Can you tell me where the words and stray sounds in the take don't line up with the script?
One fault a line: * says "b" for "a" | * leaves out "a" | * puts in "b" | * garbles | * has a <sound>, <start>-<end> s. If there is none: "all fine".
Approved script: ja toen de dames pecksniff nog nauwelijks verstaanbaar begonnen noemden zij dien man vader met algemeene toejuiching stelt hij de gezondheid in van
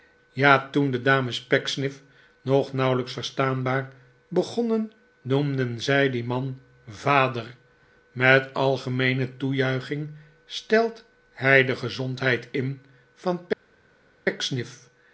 all fine